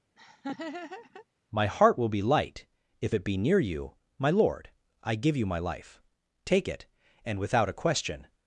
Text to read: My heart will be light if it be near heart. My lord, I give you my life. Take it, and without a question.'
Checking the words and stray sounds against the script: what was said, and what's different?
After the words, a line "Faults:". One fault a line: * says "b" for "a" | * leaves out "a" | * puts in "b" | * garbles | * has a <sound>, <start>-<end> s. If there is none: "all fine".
My heart will be light if it be near you. My lord, I give you my life. Take it, and without a question.'
Faults:
* has a laugh, 0.2-1.3 s
* says "you" for "heart"